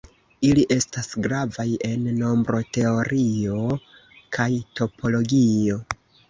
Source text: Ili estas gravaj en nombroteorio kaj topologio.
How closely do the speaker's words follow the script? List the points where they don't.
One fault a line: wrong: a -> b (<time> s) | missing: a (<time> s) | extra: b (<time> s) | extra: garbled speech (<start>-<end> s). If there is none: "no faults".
no faults